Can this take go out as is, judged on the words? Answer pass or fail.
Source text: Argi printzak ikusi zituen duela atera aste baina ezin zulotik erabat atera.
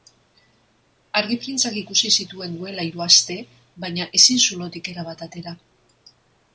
fail